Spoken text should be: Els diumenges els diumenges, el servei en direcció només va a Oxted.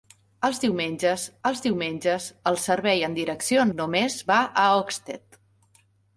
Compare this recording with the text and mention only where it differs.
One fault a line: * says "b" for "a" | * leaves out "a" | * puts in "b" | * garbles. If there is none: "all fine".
all fine